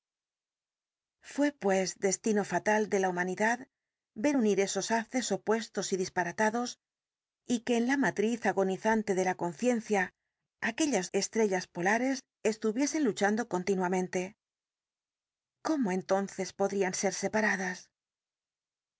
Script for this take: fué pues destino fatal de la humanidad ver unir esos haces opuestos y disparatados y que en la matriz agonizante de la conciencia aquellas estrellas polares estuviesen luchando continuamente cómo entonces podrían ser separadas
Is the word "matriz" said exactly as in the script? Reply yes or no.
yes